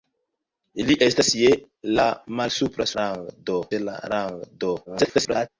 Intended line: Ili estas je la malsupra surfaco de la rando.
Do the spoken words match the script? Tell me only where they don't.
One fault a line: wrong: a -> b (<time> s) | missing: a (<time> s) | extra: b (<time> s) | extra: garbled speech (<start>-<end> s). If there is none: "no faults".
wrong: surfaco -> rando (3.0 s)
extra: garbled speech (4.9-5.5 s)